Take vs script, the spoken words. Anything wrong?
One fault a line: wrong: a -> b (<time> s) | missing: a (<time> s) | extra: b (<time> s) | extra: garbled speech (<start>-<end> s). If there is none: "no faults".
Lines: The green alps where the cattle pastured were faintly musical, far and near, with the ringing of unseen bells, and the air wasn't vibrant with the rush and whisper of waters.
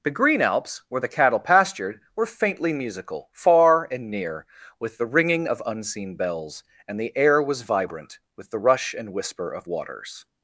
wrong: wasn't -> was (7.4 s)